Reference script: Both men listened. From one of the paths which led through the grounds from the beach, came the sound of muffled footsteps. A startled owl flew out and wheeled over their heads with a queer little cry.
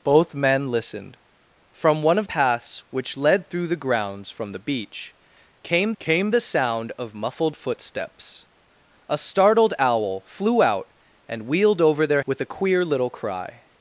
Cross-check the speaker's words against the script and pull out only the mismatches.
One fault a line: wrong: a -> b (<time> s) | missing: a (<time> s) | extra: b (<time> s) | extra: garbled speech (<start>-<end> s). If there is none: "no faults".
missing: the (2.3 s)
extra: came (6.0 s)
missing: heads (12.2 s)